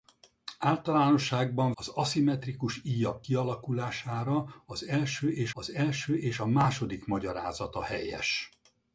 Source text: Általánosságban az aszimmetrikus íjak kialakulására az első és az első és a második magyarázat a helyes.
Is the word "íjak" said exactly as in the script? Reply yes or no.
yes